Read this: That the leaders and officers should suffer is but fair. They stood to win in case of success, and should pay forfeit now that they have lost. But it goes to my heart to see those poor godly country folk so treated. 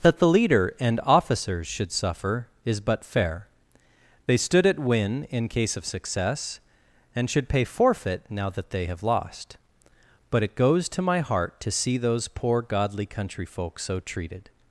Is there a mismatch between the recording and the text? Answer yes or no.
yes